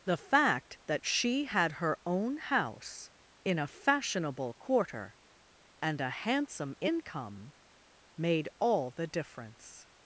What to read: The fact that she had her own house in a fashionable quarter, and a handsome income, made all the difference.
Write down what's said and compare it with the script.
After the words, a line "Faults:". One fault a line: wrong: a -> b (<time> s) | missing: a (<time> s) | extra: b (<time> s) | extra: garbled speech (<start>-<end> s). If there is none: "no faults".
The fact that she had her own house in a fashionable quarter, and a handsome income, made all the difference.
Faults:
no faults